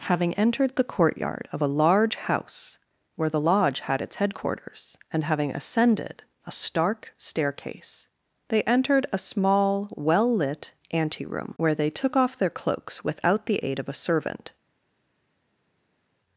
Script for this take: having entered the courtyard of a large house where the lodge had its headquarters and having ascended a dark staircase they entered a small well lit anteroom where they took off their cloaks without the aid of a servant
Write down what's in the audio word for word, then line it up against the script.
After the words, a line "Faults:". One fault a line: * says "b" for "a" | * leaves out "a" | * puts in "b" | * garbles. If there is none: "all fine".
having entered the courtyard of a large house where the lodge had its headquarters and having ascended a stark staircase they entered a small well lit anteroom where they took off their cloaks without the aid of a servant
Faults:
* says "stark" for "dark"